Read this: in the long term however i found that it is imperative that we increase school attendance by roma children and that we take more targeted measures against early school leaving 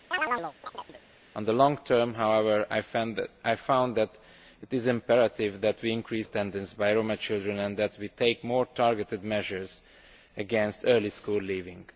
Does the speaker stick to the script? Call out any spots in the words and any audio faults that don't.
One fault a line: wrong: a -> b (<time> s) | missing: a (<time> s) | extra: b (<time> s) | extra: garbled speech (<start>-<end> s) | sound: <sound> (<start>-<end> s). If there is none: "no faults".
sound: chirp (0.1-1.0 s)
missing: school (6.3 s)